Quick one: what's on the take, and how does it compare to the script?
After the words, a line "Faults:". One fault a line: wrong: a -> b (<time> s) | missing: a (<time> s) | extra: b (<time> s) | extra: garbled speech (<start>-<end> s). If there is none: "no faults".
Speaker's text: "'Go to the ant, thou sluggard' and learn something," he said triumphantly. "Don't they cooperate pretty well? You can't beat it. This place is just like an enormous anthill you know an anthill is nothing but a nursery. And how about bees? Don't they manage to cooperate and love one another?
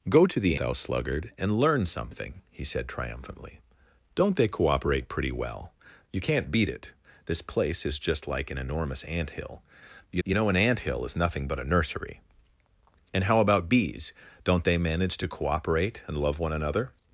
"'Go to the thou sluggard' and learn something," he said triumphantly. "Don't they cooperate pretty well? You can't beat it. This place is just like an enormous anthill you you know an anthill is nothing but a nursery. And how about bees? Don't they manage to cooperate and love one another?
Faults:
missing: ant (0.6 s)
extra: you (10.2 s)